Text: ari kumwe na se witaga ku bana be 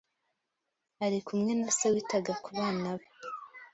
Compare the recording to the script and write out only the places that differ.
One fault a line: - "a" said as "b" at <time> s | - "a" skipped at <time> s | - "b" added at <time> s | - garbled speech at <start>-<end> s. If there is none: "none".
none